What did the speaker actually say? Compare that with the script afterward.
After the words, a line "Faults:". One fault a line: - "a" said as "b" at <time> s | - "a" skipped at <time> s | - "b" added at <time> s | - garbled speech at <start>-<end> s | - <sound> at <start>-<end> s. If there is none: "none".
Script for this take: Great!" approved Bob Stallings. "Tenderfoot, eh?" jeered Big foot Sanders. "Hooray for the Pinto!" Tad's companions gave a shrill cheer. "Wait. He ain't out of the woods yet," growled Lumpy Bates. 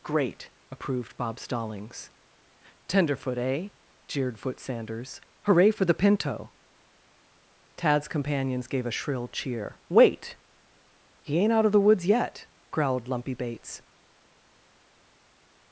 Great!" approved Bob Stallings. "Tenderfoot, eh?" jeered foot Sanders. "Hooray for the Pinto!" Tad's companions gave a shrill cheer. "Wait. He ain't out of the woods yet," growled Lumpy Bates.
Faults:
- "Big" skipped at 4.4 s